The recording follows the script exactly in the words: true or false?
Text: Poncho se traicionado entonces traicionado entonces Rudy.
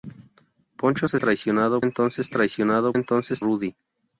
true